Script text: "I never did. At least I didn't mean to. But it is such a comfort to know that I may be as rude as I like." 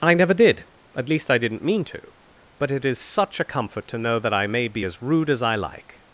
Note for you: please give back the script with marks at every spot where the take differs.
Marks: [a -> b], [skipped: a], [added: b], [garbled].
"I never did. At least I didn't mean to. But it is such a comfort to know that I may be as rude as I like."